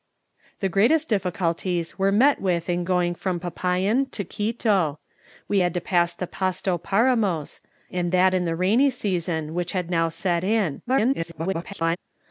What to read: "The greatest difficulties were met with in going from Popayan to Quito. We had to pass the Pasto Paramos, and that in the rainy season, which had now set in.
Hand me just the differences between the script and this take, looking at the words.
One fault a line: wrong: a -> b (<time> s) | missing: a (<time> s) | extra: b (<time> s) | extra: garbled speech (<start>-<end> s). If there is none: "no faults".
extra: garbled speech (10.9-12.0 s)